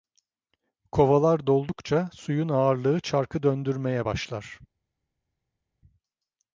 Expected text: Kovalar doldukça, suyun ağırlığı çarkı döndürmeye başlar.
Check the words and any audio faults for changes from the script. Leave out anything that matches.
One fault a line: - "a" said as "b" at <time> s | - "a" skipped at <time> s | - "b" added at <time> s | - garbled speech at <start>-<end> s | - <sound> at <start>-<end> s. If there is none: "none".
none